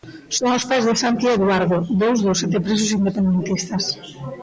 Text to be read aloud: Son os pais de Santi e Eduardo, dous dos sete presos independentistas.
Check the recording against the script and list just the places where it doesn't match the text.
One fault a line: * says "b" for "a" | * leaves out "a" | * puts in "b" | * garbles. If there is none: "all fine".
all fine